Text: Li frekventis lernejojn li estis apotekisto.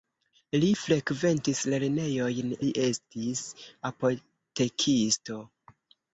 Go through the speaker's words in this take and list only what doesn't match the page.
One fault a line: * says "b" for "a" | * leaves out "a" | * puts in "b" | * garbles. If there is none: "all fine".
all fine